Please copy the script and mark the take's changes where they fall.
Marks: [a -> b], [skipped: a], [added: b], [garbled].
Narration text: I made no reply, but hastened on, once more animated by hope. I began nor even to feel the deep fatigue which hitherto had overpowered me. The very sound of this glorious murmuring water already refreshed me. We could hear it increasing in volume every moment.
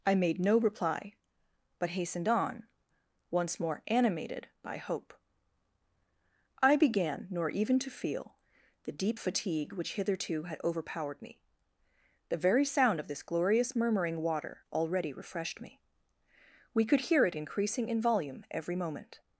I made no reply, but hastened on, once more animated by hope. I began nor even to feel the deep fatigue which hitherto had overpowered me. The very sound of this glorious murmuring water already refreshed me. We could hear it increasing in volume every moment.